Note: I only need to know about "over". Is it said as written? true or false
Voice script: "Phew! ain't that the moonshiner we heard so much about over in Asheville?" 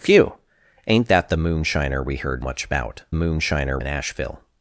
false